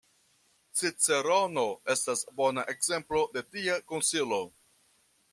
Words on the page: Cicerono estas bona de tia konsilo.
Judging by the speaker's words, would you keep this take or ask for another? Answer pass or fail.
fail